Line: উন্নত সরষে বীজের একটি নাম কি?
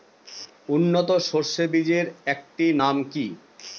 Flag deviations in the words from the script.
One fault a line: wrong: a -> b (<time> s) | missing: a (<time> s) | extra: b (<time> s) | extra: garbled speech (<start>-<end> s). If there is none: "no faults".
no faults